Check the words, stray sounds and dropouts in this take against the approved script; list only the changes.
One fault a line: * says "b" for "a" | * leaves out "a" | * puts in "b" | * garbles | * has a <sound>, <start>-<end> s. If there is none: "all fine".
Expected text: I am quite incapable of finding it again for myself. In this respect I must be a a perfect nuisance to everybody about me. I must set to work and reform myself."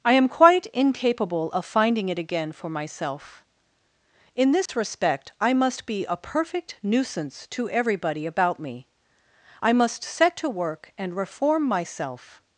* has a dropout, 4.7-4.7 s
* leaves out "a"